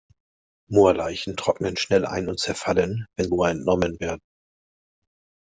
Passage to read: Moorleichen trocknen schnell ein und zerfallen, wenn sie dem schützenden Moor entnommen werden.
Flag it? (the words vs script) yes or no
yes